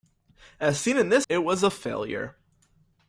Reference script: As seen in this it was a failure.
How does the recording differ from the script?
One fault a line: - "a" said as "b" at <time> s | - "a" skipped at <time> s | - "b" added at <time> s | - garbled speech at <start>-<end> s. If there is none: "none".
none